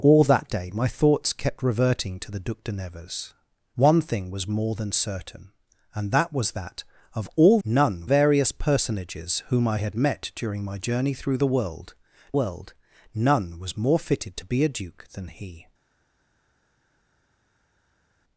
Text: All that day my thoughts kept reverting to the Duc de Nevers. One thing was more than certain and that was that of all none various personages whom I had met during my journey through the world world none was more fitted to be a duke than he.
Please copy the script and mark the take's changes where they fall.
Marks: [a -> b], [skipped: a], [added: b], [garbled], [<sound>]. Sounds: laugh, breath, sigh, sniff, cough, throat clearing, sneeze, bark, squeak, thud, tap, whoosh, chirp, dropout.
All that day my thoughts kept reverting to the Duc de Nevers. One thing was more than certain and that was that of all none various personages whom I had met during my journey through the world world none was more fitted to be a duke than he.